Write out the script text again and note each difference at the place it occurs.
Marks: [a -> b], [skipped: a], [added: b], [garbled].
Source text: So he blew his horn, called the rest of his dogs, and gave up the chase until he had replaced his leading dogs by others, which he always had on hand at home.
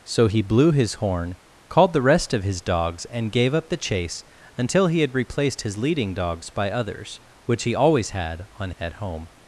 So he blew his horn, called the rest of his dogs, and gave up the chase until he had replaced his leading dogs by others, which he always had on [skipped: hand] at home.